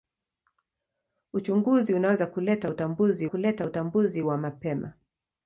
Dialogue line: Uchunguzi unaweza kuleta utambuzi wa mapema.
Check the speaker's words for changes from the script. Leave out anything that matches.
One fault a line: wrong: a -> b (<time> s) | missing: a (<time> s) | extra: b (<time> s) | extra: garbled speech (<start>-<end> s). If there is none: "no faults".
extra: kuleta utambuzi (3.2 s)